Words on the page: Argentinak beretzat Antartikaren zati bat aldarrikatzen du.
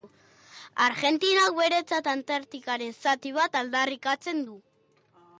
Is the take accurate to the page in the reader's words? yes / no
yes